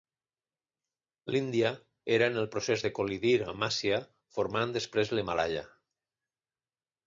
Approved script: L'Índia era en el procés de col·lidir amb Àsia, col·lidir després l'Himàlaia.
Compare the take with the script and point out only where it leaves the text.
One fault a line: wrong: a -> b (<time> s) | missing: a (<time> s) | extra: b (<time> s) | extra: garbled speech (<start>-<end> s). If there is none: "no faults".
wrong: col·lidir -> formant (4.4 s)